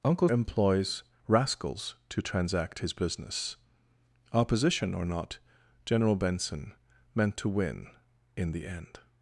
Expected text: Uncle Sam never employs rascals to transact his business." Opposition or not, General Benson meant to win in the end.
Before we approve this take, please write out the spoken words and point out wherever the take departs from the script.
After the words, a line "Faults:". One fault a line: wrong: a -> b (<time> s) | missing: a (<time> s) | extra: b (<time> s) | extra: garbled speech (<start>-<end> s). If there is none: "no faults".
Uncle Employs rascals to transact his business." Opposition or not, General Benson meant to win in the end.
Faults:
missing: Sam never (0.3 s)